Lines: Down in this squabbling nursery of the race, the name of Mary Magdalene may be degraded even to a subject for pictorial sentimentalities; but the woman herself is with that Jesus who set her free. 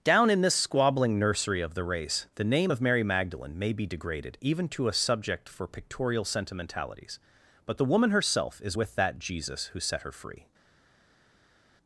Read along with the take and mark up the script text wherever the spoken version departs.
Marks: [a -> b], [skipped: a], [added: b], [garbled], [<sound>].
Down in this squabbling nursery of the race, the name of Mary Magdalene may be degraded even to a subject for pictorial sentimentalities; but the woman herself is with that Jesus who set her free.